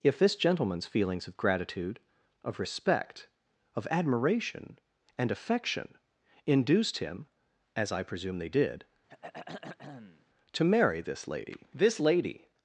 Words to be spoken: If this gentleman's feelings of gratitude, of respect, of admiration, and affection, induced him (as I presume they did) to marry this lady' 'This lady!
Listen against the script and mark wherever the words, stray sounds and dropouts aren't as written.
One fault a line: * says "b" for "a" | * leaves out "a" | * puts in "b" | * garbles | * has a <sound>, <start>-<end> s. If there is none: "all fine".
* has a throat clearing, 9.1-10.3 s